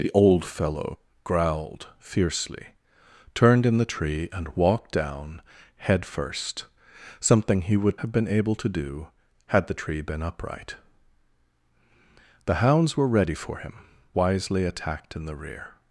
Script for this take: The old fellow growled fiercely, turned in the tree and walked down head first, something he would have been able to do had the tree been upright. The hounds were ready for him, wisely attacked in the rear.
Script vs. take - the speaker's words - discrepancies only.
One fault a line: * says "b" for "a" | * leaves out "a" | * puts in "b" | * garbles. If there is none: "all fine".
all fine